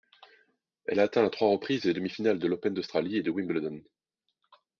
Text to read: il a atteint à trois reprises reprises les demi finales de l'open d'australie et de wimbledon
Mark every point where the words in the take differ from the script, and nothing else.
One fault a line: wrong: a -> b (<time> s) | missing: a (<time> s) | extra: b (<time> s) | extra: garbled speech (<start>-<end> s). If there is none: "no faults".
wrong: il -> elle (0.8 s)
missing: reprises (1.8 s)